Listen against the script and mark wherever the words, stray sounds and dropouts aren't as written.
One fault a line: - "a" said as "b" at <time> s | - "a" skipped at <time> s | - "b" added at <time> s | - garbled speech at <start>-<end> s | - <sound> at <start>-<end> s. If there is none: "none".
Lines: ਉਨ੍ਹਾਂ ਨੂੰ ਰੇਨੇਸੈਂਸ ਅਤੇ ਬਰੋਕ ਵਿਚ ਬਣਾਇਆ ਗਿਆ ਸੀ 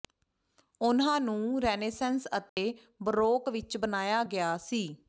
- dropout at 2.5-2.6 s